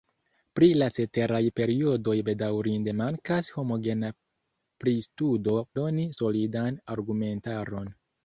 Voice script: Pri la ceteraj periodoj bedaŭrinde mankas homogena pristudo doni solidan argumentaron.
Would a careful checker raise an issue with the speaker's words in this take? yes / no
no